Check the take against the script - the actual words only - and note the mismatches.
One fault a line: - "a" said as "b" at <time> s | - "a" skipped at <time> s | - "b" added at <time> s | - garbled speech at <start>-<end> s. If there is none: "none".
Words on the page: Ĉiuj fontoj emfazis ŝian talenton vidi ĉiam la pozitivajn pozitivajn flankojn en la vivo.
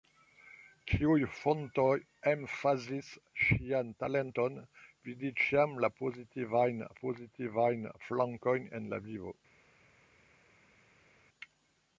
none